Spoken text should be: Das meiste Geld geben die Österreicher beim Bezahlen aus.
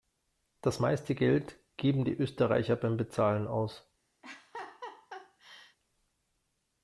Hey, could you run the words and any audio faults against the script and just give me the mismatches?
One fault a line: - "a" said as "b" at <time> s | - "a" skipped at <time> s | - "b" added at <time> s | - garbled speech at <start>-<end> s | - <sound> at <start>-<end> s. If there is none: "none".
- laugh at 4.2-5.8 s